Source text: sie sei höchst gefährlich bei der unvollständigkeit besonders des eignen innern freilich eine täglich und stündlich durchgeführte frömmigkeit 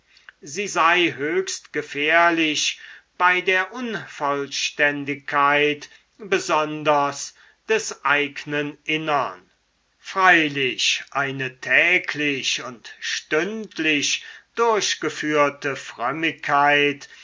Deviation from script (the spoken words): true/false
false